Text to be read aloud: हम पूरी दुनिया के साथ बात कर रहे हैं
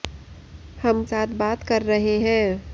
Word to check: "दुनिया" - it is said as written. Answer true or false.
false